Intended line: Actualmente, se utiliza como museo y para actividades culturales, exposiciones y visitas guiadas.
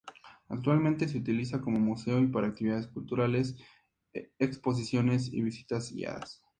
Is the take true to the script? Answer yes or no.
yes